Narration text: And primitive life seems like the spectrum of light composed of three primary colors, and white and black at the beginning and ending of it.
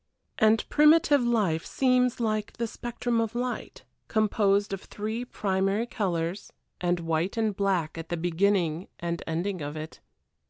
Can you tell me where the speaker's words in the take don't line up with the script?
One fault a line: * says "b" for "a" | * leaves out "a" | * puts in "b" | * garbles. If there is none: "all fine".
all fine